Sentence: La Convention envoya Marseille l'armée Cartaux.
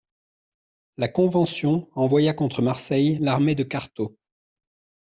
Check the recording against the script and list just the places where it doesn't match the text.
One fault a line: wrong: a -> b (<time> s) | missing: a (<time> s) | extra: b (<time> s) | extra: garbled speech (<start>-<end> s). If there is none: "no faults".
extra: contre (2.3 s)
extra: de (3.5 s)